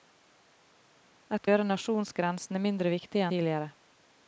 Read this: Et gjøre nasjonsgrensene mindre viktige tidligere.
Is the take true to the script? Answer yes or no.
yes